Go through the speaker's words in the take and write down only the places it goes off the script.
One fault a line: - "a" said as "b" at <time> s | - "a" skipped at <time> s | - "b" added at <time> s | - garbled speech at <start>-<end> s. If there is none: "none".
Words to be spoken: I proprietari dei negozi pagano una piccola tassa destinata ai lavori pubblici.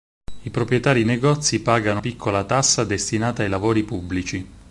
- "dei" skipped at 1.0 s
- "una" skipped at 2.0 s